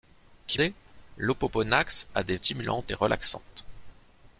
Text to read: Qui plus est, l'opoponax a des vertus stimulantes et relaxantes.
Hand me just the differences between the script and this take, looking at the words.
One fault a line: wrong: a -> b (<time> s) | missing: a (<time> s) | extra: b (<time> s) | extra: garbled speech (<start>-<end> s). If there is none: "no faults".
missing: plus (0.6 s)
missing: vertus (2.4 s)